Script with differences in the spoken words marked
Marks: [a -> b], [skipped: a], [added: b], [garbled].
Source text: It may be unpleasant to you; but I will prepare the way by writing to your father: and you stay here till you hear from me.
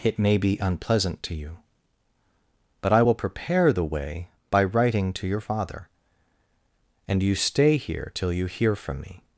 It may be unpleasant to you; but I will prepare the way by writing to your father: and you stay here till you hear from me.